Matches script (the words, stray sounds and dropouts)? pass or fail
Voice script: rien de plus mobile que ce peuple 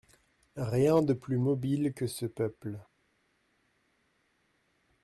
pass